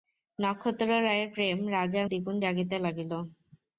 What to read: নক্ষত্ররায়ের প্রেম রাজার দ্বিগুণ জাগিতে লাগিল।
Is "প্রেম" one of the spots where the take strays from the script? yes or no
no